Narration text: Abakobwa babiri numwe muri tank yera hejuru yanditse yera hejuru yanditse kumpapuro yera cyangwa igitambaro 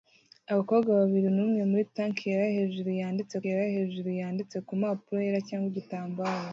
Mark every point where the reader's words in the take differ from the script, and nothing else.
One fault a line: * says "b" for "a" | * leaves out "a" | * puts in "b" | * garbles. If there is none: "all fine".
all fine